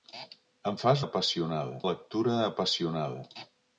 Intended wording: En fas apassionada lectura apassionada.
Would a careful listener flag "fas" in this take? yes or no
no